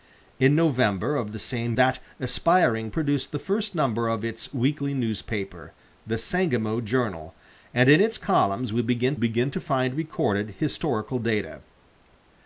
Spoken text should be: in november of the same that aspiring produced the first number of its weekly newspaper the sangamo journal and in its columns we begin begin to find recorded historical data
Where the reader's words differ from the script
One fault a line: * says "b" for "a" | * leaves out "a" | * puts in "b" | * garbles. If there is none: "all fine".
all fine